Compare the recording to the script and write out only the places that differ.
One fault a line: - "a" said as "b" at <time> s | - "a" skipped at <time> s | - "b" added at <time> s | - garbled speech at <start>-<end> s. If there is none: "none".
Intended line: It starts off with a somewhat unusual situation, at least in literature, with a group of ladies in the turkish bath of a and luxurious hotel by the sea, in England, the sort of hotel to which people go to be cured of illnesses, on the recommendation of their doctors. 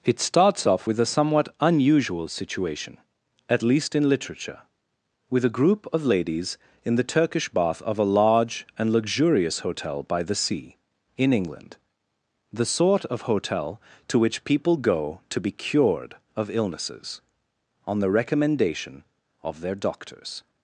- "large" added at 8.1 s